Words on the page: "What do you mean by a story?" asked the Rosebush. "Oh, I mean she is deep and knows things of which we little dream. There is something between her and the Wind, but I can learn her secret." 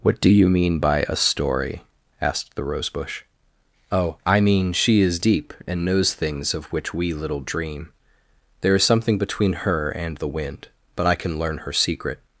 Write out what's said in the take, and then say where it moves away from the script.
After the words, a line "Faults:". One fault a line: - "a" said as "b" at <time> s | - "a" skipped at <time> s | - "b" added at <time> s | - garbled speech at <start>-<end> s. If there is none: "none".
"What do you mean by a story?" asked the Rosebush. "Oh, I mean she is deep and knows things of which we little dream. There is something between her and the Wind, but I can learn her secret."
Faults:
none